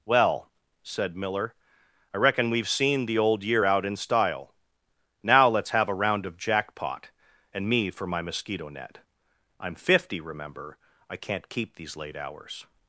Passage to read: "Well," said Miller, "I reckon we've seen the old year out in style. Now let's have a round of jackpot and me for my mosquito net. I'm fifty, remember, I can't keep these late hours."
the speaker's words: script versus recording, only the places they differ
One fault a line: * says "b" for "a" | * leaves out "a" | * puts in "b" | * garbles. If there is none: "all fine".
all fine